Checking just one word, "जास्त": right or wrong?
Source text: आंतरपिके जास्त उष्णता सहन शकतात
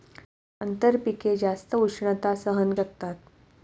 right